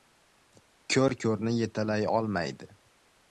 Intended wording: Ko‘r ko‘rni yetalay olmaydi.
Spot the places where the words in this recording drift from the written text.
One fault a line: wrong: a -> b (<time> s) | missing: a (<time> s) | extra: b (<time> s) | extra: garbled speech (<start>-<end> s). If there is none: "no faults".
no faults